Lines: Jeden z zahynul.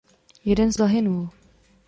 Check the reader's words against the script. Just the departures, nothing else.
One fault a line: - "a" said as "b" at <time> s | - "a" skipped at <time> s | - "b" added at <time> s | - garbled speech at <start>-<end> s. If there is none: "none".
none